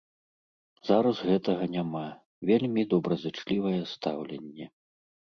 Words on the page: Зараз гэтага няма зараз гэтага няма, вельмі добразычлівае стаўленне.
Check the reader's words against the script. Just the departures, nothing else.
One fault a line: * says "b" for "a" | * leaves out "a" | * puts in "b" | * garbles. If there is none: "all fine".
* leaves out "зараз гэтага няма"